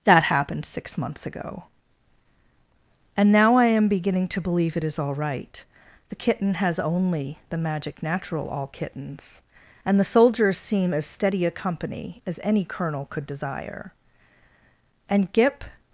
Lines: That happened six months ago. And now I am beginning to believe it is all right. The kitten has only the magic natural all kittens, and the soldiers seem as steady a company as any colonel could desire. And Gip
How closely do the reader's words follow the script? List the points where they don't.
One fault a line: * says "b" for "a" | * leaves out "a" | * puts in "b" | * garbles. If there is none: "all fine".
all fine